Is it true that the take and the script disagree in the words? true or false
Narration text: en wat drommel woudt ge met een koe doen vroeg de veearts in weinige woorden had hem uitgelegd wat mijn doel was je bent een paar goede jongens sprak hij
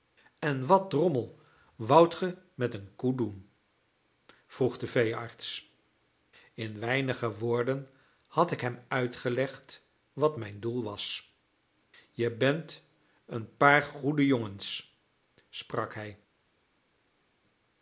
true